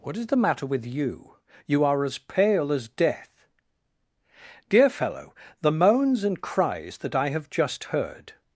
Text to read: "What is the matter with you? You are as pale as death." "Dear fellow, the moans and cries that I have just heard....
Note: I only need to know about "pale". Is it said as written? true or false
true